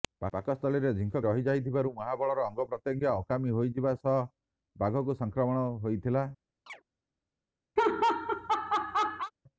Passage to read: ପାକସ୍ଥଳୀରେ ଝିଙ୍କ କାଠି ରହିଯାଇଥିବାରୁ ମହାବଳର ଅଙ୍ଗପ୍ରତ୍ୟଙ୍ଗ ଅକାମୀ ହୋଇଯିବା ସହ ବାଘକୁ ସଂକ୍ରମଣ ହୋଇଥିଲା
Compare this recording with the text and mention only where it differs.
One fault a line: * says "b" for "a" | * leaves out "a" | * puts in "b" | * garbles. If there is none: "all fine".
* leaves out "କାଠି"